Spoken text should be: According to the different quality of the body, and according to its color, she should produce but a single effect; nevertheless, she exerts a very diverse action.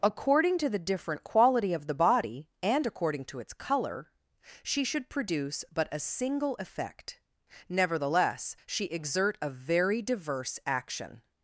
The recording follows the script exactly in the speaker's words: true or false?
false